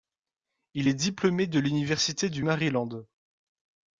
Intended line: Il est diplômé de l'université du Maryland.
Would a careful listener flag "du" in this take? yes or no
no